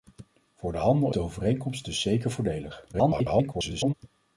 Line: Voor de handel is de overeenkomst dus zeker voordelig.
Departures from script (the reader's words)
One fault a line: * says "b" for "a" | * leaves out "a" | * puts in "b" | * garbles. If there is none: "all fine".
* leaves out "is"
* garbles